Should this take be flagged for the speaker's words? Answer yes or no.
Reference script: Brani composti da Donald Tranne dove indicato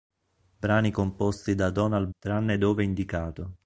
no